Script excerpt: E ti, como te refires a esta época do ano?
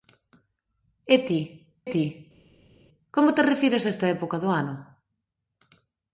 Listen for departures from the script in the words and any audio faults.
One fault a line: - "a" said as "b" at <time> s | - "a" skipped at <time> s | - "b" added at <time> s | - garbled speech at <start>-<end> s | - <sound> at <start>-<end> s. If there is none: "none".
- "ti" added at 1.9 s